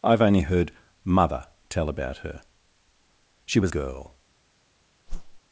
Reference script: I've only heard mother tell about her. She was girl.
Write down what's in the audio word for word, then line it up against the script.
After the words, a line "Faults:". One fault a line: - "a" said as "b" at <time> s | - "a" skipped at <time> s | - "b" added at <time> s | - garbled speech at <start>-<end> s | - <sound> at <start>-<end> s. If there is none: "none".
I've only heard mother tell about her. She was girl.
Faults:
- whoosh at 5.1-5.4 s